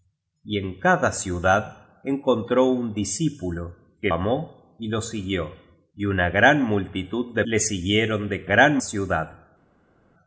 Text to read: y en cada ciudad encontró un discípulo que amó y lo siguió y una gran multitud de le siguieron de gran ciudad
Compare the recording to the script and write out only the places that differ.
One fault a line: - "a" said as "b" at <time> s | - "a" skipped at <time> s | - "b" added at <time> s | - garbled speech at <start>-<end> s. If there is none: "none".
none